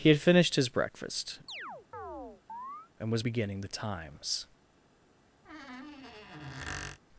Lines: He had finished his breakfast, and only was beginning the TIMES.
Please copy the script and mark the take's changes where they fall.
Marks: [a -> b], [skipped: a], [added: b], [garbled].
He had finished his breakfast, and [skipped: only] was beginning the TIMES.